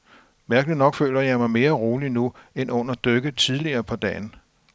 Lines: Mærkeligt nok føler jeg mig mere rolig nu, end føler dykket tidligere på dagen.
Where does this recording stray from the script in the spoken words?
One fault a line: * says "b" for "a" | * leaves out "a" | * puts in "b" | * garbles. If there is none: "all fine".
* says "under" for "føler"